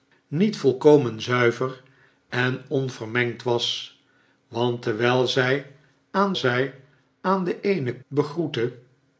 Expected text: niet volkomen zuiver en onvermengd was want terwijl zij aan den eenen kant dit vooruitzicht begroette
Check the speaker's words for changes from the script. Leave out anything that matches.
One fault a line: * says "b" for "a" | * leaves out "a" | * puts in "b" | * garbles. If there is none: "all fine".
* puts in "zij aan"
* leaves out "kant dit vooruitzicht"